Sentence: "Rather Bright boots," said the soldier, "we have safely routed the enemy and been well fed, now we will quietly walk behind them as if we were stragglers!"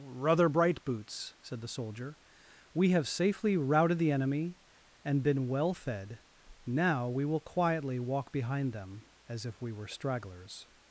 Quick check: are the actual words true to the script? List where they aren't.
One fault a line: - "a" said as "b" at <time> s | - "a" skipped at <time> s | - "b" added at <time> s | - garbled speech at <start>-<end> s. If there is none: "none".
none